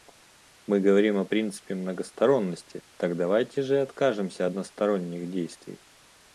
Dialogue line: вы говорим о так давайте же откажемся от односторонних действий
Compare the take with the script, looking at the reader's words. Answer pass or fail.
fail